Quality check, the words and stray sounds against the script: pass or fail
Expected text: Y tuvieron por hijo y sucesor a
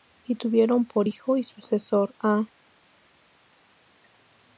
pass